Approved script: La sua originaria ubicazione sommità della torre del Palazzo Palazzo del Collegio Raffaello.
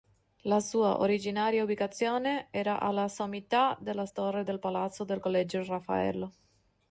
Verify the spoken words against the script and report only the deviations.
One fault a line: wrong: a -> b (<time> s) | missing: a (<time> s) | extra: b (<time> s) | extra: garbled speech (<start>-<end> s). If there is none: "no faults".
extra: era alla (2.5 s)
missing: Palazzo (5.0 s)